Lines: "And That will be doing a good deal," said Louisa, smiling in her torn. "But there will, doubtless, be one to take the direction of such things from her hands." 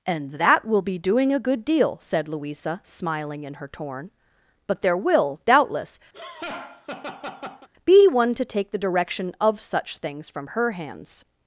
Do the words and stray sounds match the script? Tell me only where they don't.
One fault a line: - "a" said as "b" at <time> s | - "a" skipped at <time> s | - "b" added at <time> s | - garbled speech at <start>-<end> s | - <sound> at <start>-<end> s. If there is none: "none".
- laugh at 6.1-7.7 s